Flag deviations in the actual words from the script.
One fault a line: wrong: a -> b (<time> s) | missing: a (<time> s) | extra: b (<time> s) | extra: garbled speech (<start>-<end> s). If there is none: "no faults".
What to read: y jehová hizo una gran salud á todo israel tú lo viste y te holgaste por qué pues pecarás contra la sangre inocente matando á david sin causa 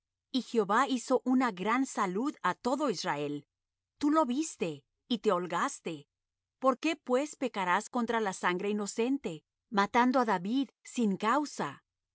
no faults